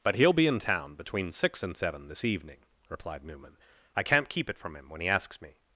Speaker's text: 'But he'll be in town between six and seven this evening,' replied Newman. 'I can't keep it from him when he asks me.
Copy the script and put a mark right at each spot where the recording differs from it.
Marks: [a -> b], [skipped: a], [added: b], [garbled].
'But he'll be in town between six and seven this evening,' replied Newman. 'I can't keep it from him when he asks me.